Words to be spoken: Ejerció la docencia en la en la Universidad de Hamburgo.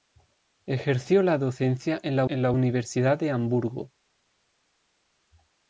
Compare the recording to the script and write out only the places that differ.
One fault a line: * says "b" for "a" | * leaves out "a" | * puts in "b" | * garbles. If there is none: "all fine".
all fine